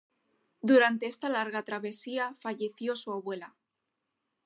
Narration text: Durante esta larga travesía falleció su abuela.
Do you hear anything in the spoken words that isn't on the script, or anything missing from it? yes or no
no